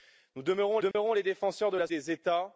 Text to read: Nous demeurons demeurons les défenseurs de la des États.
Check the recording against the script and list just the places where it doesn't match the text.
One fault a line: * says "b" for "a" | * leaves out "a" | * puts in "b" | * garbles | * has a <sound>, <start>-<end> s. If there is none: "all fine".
* has a dropout, 0.9-0.9 s